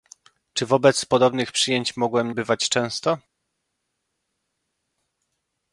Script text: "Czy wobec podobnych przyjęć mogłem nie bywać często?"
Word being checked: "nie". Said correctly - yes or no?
no